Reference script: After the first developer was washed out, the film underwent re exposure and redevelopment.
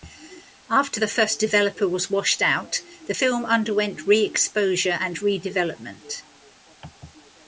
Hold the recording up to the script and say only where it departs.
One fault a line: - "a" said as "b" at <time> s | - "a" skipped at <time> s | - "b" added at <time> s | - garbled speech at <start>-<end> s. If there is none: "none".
none